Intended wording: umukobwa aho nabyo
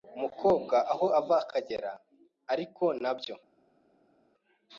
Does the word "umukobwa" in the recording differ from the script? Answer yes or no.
no